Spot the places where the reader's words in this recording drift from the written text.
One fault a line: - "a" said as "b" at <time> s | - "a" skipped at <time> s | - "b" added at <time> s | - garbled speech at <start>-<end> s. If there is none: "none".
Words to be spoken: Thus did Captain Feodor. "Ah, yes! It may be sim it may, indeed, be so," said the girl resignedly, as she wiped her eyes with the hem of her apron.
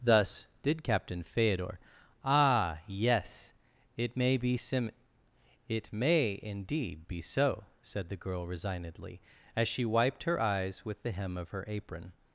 none